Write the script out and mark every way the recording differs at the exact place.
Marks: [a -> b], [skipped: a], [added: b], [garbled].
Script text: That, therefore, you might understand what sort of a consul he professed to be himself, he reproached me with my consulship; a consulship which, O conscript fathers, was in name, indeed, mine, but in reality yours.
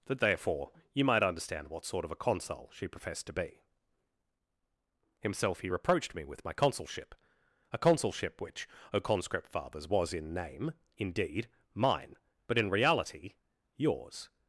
That, therefore, you might understand what sort of a consul [he -> she] professed to be himself, he reproached me with my consulship; a consulship which, O conscript fathers, was in name, indeed, mine, but in reality yours.